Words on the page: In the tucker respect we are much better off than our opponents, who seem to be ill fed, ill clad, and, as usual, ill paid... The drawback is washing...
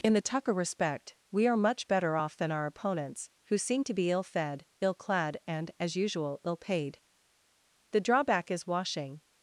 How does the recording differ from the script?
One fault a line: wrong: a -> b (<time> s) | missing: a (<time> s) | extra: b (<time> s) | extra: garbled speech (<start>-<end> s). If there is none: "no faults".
no faults